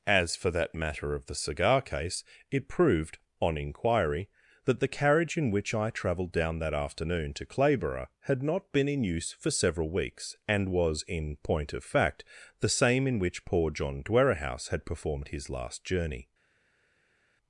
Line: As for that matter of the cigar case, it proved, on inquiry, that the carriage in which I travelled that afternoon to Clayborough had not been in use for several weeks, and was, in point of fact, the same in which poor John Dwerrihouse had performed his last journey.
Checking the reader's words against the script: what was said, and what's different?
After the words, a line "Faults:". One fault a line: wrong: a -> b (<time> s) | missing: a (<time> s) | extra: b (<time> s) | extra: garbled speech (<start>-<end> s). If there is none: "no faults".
As for that matter of the cigar case, it proved, on inquiry, that the carriage in which I travelled down that afternoon to Clayborough had not been in use for several weeks, and was, in point of fact, the same in which poor John Dwerrihouse had performed his last journey.
Faults:
extra: down (6.3 s)